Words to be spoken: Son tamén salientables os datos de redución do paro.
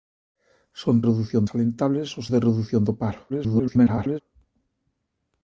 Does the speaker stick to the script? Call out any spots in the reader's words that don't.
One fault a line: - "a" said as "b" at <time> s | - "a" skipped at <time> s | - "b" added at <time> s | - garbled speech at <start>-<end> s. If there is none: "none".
- "tamén" said as "redución" at 1.1 s
- "datos" skipped at 2.3 s
- garbled speech at 3.3-4.2 s